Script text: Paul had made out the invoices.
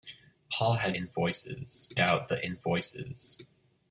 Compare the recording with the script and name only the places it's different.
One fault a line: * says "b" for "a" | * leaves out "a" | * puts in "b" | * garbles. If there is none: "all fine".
* says "invoices" for "made"